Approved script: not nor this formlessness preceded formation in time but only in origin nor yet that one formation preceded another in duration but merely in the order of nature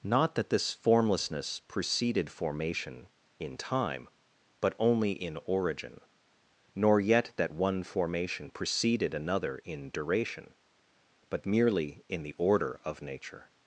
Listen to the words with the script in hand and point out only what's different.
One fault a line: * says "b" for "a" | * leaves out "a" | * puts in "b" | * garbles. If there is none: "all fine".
* says "that" for "nor"